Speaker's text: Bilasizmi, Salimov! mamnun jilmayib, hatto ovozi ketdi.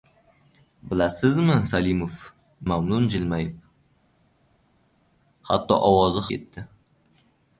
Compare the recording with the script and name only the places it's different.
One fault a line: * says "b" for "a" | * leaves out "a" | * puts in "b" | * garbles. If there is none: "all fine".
all fine